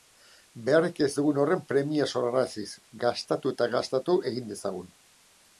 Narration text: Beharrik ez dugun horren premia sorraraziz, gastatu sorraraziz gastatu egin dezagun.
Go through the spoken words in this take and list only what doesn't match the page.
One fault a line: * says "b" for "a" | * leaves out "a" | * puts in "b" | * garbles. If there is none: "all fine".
* says "eta" for "sorraraziz"